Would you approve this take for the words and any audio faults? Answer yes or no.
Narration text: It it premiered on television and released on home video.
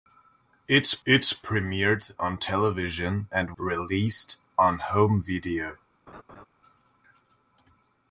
no